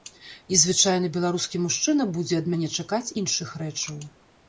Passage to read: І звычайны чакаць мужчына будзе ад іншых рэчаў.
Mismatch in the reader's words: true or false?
true